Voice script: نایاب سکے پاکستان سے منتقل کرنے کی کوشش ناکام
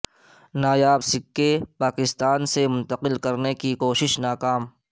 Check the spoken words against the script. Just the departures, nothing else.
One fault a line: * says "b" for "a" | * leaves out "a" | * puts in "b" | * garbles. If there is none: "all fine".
all fine